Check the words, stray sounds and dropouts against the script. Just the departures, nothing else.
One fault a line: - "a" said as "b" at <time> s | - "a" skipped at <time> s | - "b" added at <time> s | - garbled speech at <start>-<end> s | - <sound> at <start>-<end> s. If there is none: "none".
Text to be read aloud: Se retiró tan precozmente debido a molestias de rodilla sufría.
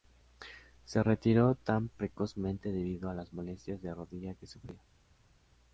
- "las" added at 3.1 s
- "que" added at 4.3 s